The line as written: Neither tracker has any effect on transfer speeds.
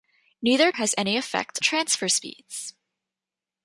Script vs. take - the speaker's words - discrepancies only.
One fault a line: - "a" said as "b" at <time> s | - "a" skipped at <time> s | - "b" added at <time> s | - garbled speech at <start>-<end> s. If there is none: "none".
- "tracker" skipped at 0.7 s
- "on" skipped at 1.6 s